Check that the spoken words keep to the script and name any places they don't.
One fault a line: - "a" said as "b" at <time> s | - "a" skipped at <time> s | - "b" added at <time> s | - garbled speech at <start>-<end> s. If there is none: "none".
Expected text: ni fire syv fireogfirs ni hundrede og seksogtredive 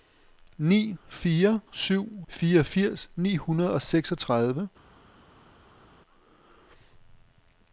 none